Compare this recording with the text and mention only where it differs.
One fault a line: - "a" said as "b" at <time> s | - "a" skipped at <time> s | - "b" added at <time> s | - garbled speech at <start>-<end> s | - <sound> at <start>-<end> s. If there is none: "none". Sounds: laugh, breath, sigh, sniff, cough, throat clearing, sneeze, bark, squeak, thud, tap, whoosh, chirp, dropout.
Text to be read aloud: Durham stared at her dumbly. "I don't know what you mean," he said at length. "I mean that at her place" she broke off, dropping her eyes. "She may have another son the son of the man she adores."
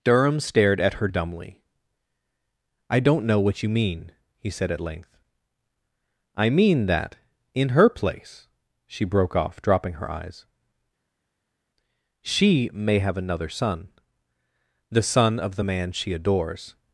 - "at" said as "in" at 7.5 s